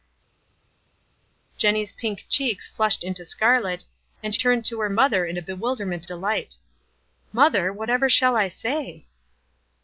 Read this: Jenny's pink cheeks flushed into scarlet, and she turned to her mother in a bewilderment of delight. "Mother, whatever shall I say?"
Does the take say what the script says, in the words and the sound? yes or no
no